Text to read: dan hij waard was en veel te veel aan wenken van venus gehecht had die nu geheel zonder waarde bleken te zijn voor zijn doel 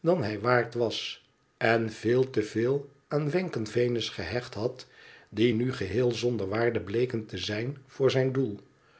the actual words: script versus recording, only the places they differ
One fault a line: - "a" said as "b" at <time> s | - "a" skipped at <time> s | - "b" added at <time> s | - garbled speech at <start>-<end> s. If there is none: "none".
- "van" skipped at 3.7 s